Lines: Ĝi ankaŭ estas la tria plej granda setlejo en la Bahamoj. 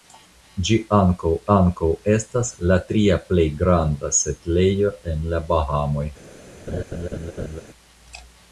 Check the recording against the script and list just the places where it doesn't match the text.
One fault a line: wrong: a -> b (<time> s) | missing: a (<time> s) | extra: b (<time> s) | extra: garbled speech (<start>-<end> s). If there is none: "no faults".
extra: ankaŭ (1.6 s)